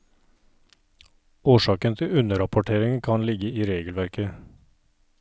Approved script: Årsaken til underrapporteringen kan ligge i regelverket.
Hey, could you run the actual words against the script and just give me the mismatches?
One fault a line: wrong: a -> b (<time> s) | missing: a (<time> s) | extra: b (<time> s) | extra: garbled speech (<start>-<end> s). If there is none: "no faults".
no faults